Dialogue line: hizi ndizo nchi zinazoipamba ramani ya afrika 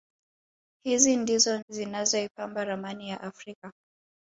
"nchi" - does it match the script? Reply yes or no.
no